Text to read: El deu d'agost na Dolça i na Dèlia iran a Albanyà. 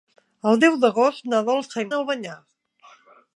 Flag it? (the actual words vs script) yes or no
yes